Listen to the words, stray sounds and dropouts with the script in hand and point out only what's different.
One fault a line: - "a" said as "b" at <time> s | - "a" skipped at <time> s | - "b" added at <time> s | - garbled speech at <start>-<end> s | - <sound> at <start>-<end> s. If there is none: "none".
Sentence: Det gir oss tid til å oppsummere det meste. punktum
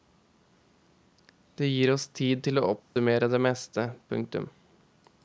- dropout at 2.8-3.0 s